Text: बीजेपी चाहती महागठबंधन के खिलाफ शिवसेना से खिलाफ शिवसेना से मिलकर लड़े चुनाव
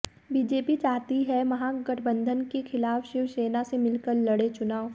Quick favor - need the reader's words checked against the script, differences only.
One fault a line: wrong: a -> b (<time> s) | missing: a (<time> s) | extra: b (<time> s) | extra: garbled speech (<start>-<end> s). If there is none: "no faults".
extra: है (1.2 s)
missing: खिलाफ शिवसेना से (3.8 s)